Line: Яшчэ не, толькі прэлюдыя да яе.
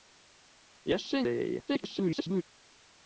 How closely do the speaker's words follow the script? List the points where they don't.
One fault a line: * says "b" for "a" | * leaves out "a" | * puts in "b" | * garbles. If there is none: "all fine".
* leaves out "не толькі прэлюдыя"
* garbles